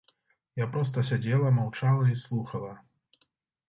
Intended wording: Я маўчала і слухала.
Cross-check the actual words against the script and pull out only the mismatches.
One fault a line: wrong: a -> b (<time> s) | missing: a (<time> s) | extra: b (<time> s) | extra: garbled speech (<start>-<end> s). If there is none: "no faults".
extra: проста сядзела (0.8 s)